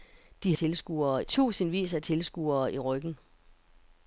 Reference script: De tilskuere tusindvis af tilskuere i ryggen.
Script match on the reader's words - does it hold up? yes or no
yes